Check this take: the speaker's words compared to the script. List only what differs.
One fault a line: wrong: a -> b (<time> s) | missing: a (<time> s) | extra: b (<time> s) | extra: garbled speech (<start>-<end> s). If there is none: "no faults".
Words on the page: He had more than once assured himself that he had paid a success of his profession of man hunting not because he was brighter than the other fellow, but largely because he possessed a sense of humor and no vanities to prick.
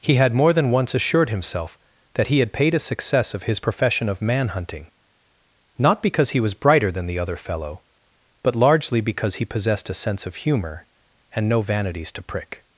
no faults